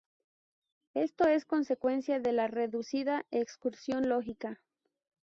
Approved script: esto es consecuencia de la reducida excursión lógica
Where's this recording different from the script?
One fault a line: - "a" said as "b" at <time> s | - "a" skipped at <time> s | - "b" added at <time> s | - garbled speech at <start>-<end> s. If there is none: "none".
none